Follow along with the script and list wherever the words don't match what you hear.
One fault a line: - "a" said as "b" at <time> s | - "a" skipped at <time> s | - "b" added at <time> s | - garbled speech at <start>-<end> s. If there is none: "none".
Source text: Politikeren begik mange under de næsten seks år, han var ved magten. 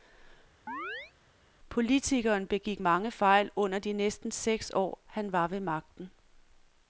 - "fejl" added at 3.1 s